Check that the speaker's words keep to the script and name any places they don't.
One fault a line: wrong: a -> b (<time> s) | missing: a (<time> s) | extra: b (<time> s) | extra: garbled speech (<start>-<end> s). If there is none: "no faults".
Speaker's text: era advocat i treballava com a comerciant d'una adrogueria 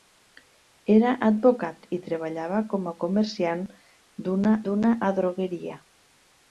extra: d'una (4.7 s)